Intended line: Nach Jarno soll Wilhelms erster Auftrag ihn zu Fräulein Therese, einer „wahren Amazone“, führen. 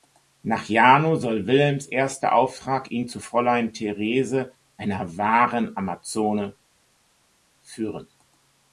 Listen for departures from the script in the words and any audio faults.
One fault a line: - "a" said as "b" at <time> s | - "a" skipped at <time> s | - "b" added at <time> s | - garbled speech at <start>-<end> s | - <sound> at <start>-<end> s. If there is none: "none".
none